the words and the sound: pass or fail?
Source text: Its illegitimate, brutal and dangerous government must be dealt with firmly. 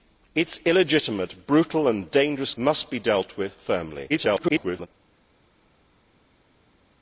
fail